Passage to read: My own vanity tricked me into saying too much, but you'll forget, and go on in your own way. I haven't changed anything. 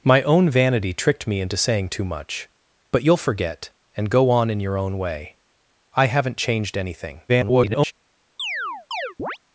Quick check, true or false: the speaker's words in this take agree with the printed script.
false